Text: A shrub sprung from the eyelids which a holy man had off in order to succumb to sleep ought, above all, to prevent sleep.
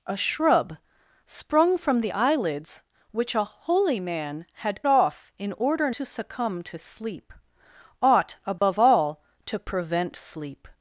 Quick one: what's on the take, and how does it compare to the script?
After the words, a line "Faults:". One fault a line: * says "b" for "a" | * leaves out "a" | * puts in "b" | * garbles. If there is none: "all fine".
A shrub sprung from the eyelids which a holy man had off in order to succumb to sleep ought, above all, to prevent sleep.
Faults:
all fine